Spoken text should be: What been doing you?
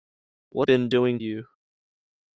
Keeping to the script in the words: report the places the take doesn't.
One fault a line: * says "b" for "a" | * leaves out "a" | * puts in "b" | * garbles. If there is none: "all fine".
all fine